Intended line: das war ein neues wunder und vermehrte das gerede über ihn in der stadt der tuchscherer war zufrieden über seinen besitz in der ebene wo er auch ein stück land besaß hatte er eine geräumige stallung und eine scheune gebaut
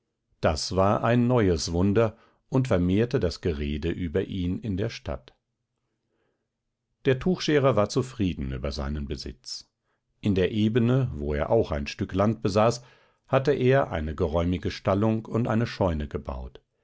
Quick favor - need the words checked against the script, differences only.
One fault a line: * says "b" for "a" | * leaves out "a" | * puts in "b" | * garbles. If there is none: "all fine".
all fine